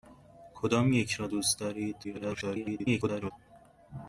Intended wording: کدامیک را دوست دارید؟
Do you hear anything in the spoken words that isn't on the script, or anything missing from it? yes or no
yes